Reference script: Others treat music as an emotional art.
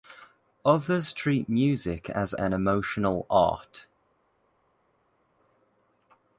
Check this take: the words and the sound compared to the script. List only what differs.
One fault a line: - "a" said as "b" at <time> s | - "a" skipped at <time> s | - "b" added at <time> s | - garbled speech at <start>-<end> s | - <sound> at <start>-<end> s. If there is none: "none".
none